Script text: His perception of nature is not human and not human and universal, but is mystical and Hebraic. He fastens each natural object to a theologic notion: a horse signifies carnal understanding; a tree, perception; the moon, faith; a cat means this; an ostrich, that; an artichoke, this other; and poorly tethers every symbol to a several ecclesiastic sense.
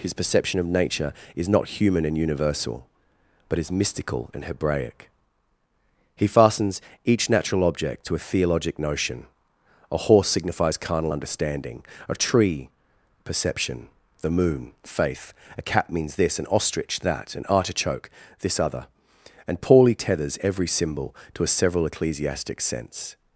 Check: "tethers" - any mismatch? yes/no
no